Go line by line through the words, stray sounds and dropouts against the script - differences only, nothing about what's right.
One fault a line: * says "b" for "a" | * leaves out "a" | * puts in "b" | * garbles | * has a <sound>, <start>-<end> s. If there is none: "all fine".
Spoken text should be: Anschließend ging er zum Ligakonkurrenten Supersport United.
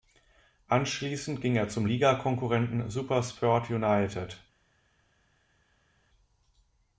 all fine